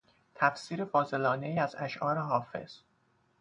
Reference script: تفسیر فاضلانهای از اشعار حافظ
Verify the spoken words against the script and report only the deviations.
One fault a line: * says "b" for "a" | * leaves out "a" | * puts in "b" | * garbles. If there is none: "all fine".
all fine